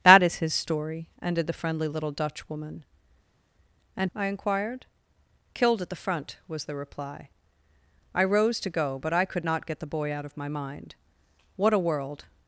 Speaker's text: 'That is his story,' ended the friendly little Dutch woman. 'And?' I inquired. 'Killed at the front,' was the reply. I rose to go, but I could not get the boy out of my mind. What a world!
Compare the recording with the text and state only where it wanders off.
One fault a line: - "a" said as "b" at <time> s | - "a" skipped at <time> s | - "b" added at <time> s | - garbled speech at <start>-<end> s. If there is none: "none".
none